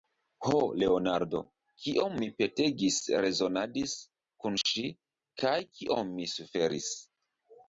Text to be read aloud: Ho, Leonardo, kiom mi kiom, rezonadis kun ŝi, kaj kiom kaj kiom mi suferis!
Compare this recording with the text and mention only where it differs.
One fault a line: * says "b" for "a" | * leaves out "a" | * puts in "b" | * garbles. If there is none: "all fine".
* says "petegis" for "kiom"
* leaves out "kaj kiom"